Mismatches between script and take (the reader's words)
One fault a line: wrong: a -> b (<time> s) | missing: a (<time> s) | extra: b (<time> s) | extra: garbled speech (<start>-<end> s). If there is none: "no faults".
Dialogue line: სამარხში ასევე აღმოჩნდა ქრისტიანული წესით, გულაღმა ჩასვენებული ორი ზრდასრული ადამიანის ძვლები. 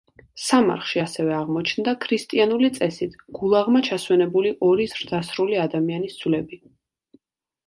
no faults